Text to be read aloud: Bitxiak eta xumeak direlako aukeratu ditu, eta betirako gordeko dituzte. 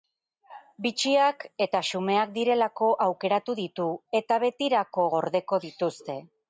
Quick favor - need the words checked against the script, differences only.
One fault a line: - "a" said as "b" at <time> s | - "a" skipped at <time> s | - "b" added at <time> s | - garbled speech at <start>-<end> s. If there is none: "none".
none